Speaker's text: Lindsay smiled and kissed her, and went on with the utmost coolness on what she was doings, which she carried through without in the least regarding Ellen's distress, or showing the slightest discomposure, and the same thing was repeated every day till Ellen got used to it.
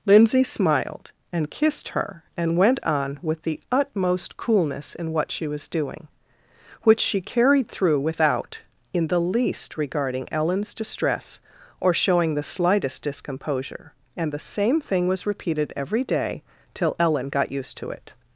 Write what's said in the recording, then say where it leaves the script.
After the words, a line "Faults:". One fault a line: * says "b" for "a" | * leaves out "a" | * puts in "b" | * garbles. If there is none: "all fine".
Lindsay smiled and kissed her, and went on with the utmost coolness in what she was doing, which she carried through without in the least regarding Ellen's distress, or showing the slightest discomposure, and the same thing was repeated every day till Ellen got used to it.
Faults:
* says "in" for "on"
* says "doing" for "doings"